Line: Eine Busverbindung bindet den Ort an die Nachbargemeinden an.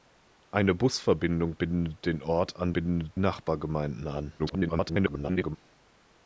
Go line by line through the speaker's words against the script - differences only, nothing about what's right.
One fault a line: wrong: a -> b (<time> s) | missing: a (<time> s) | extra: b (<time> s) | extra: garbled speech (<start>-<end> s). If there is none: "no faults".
wrong: die -> bindet (2.7 s)
extra: garbled speech (4.4-5.6 s)